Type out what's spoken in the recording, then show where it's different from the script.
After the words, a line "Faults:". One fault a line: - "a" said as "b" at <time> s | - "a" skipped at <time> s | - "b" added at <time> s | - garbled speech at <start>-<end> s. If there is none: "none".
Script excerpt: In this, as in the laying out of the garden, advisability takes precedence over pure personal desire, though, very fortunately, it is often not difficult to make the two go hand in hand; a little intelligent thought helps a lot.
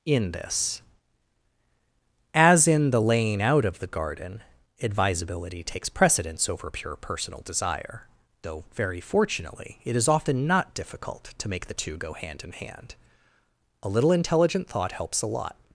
In this, as in the laying out of the garden, advisability takes precedence over pure personal desire, though, very fortunately, it is often not difficult to make the two go hand in hand; a little intelligent thought helps a lot.
Faults:
none